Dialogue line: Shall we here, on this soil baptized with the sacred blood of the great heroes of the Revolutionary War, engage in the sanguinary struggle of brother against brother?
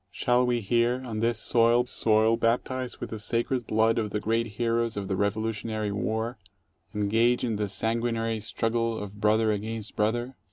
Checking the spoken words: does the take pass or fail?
fail